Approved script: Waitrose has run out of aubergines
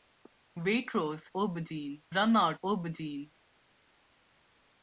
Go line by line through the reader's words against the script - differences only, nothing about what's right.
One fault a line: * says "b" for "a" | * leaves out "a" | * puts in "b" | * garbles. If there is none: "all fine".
* says "aubergines" for "has"
* leaves out "of"